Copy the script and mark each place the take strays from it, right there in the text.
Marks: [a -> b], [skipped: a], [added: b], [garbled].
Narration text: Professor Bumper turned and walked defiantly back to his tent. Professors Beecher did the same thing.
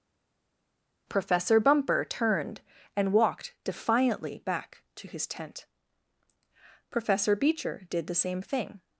Professor Bumper turned and walked defiantly back to his tent. [Professors -> Professor] Beecher did the same thing.